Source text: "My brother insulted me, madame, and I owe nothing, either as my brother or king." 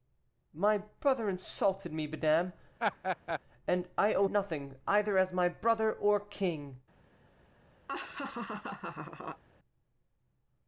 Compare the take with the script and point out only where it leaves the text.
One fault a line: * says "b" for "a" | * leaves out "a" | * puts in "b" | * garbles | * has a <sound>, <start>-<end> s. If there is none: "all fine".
* has a laugh, 2.8-3.4 s
* has a laugh, 7.9-9.4 s